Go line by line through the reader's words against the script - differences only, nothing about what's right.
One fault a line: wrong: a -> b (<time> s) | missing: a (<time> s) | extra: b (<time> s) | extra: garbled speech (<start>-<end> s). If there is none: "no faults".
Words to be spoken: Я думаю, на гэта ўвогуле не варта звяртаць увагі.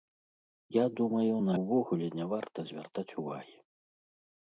missing: гэта (1.5 s)